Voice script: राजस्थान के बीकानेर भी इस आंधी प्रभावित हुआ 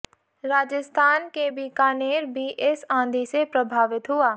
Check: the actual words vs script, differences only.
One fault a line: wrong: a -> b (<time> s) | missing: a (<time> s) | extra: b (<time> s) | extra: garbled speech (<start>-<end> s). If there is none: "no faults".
extra: से (3.2 s)